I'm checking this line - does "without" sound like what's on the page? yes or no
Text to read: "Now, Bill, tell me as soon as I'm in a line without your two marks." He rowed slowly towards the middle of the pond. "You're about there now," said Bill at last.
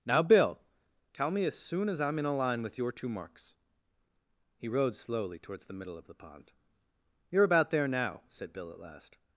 no